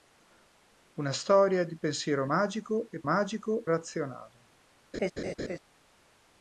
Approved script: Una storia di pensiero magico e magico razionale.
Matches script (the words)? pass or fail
pass